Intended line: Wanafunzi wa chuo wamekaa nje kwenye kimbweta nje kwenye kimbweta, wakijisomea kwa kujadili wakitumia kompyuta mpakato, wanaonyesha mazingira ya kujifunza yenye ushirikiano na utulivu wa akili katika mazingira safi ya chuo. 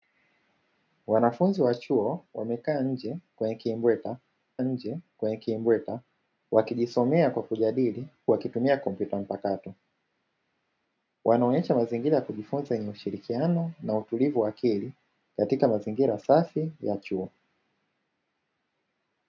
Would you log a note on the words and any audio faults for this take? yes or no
no